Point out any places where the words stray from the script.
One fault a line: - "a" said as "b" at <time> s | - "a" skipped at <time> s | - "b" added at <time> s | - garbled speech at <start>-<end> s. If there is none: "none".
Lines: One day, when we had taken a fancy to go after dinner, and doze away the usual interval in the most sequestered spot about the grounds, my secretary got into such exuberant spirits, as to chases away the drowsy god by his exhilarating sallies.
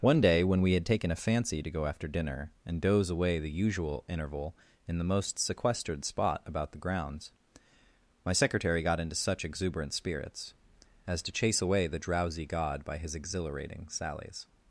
- "chases" said as "chase" at 11.3 s